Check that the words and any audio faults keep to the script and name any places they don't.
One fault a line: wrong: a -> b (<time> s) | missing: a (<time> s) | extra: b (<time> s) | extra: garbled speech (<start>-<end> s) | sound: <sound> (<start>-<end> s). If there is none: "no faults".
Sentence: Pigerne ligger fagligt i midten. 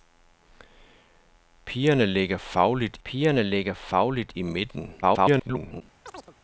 extra: pigerne ligger fagligt (3.0 s)
extra: garbled speech (5.0-5.8 s)
sound: chirp (6.1-6.4 s)